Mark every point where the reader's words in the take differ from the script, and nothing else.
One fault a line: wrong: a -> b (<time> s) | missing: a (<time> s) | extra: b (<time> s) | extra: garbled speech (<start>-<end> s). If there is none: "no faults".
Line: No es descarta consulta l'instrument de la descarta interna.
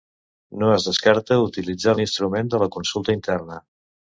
wrong: consulta -> utilitzar (1.5 s)
wrong: descarta -> consulta (2.8 s)